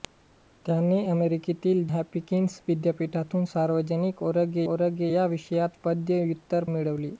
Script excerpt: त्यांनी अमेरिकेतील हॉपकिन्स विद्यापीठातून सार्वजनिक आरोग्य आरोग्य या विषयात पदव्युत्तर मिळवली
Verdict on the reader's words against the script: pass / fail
pass